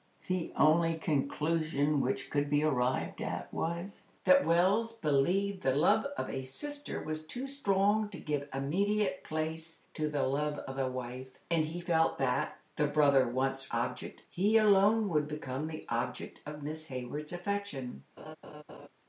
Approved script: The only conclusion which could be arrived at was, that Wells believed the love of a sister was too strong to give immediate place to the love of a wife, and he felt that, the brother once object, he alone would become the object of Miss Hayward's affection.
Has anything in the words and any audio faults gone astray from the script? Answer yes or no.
yes